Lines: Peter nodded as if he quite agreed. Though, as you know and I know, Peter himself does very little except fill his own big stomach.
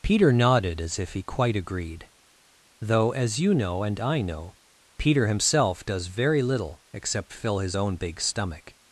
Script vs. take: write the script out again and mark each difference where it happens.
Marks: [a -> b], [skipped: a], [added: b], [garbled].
Peter nodded as if he quite agreed. Though, as you know and I know, Peter himself does very little except fill his own big stomach.